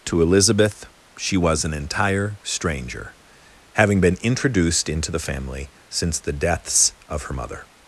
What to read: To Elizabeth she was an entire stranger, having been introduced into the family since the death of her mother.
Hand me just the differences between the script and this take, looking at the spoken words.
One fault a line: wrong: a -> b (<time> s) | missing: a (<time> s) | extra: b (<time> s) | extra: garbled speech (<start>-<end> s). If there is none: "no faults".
wrong: death -> deaths (6.3 s)